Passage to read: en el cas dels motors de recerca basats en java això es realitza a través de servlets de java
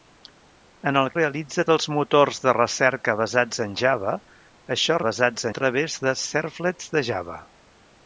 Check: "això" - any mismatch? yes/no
no